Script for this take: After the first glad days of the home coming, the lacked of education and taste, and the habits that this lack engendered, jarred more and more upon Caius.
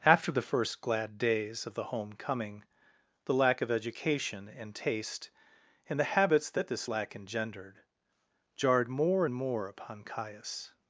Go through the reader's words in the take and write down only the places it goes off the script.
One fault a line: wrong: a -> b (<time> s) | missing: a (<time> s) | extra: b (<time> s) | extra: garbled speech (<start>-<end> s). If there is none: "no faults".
wrong: lacked -> lack (3.4 s)